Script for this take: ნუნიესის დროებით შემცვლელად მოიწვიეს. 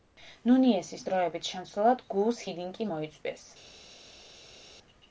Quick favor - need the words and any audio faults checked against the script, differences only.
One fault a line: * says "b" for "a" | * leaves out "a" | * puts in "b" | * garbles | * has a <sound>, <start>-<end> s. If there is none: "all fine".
* puts in "გუუს ჰიდინკი"